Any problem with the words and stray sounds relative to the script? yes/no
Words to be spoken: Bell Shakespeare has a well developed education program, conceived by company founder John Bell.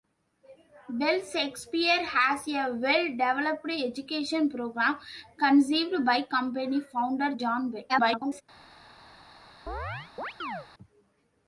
yes